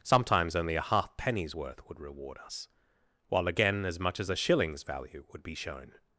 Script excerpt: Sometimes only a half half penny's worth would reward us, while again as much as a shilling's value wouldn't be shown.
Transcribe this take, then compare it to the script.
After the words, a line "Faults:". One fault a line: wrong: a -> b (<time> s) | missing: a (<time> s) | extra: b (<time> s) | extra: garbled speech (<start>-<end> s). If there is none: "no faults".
Sometimes only a half penny's worth would reward us, while again as much as a shilling's value would be shown.
Faults:
missing: half (1.1 s)
wrong: wouldn't -> would (5.3 s)